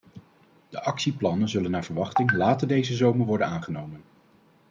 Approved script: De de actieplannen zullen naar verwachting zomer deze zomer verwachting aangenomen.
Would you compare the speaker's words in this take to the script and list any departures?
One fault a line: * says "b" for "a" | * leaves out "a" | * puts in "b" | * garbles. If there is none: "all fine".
* leaves out "de"
* says "later" for "zomer"
* says "worden" for "verwachting"